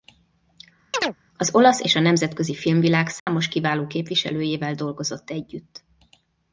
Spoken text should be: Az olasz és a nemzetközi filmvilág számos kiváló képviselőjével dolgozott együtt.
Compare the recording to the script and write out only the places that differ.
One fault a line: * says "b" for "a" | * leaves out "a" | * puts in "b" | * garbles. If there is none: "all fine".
all fine